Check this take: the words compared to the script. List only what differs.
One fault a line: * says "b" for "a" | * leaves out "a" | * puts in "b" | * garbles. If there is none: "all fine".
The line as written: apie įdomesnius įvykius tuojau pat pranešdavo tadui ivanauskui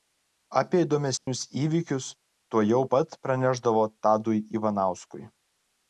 all fine